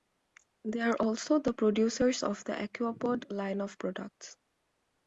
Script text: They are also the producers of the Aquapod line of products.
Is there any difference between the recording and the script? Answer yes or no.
no